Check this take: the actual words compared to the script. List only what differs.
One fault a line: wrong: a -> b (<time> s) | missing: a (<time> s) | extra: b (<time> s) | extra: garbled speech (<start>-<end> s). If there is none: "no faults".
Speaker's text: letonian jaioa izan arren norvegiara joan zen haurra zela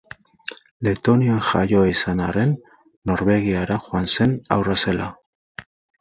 no faults